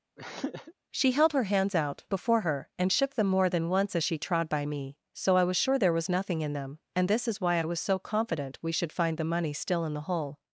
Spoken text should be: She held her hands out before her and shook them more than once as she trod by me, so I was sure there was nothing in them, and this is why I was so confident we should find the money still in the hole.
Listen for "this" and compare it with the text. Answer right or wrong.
right